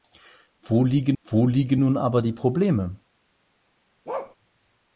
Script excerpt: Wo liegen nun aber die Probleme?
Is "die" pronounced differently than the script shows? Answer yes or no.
no